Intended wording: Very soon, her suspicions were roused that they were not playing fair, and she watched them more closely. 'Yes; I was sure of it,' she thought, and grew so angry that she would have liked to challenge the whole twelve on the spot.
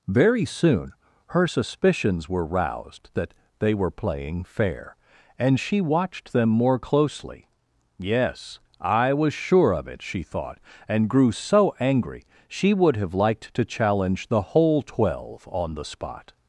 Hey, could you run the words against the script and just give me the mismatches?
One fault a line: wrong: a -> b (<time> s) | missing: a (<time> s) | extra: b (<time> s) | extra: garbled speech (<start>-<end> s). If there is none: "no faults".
missing: not (3.9 s)
missing: that (12.3 s)